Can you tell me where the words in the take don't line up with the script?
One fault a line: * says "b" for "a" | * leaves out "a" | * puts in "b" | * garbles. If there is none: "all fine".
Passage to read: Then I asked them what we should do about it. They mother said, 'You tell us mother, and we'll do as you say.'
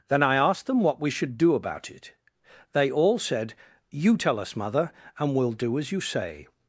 * says "all" for "mother"